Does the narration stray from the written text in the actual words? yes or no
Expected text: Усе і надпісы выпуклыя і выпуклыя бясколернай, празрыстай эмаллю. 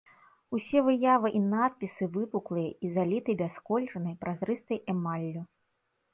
yes